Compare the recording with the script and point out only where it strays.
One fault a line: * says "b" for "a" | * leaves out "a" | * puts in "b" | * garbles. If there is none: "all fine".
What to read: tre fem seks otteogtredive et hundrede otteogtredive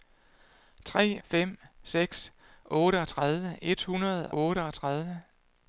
all fine